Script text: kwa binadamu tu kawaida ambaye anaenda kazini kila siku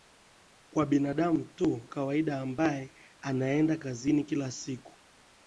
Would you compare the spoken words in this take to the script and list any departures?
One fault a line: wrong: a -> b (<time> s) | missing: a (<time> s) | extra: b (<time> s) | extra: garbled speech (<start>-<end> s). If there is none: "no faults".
no faults